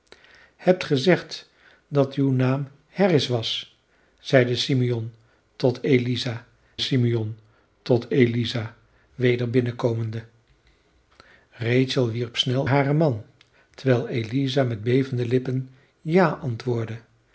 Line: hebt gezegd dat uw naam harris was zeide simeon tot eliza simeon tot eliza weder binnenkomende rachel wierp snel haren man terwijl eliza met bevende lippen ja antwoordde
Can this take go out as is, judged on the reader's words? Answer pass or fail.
pass